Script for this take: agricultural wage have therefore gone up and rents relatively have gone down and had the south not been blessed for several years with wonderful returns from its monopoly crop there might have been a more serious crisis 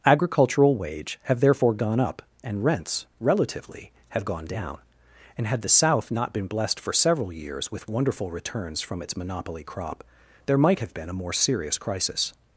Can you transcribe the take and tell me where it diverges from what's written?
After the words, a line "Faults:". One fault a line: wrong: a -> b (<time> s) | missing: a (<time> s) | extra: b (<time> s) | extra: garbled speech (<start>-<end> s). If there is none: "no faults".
agricultural wage have therefore gone up and rents relatively have gone down and had the south not been blessed for several years with wonderful returns from its monopoly crop there might have been a more serious crisis
Faults:
no faults